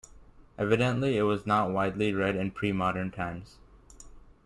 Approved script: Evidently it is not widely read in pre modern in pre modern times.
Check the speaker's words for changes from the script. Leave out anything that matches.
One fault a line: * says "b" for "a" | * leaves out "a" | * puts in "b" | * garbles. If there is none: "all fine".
* says "was" for "is"
* leaves out "in pre modern"